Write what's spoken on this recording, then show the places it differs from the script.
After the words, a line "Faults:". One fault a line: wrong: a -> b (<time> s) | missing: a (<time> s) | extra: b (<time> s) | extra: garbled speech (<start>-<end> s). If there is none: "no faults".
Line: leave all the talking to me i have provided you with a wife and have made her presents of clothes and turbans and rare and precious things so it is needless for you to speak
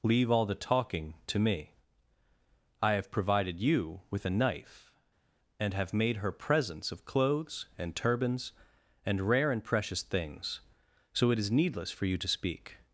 leave all the talking to me i have provided you with a knife and have made her presents of clothes and turbans and rare and precious things so it is needless for you to speak
Faults:
wrong: wife -> knife (4.3 s)